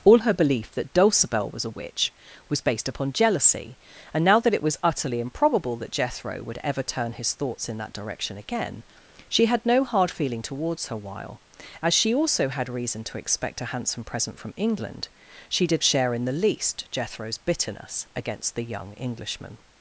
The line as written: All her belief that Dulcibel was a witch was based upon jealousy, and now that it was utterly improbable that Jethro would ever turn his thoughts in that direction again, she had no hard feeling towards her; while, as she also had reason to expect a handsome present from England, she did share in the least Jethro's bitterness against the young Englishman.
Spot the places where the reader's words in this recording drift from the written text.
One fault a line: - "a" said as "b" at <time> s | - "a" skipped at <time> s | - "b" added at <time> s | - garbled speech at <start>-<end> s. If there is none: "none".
none